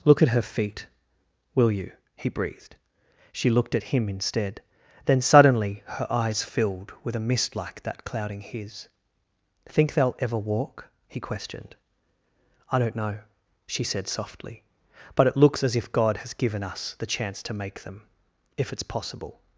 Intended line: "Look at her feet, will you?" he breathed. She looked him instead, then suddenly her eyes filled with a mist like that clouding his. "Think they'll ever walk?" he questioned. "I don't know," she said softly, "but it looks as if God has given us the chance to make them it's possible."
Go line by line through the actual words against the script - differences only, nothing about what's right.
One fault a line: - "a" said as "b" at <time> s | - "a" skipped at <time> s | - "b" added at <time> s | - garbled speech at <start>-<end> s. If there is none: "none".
- "at" added at 3.8 s
- "if" added at 18.5 s